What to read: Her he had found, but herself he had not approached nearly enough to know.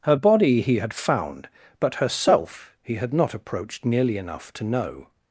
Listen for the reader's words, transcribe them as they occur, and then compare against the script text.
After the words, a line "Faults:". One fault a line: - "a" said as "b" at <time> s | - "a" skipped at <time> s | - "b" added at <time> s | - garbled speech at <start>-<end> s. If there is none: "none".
Her body he had found, but herself he had not approached nearly enough to know.
Faults:
- "body" added at 0.1 s